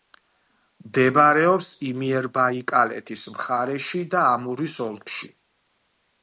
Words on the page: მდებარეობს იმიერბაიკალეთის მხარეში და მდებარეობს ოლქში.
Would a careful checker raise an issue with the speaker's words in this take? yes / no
yes